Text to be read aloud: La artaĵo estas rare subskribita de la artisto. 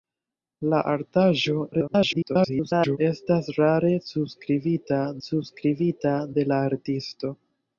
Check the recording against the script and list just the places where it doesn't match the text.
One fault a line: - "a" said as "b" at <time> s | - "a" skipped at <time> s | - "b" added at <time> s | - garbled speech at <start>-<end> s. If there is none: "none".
- garbled speech at 1.7-3.0 s
- "subskribita" added at 5.3 s